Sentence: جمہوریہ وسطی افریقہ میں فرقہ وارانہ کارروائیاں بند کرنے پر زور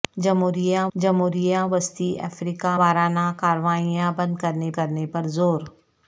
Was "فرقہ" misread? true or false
true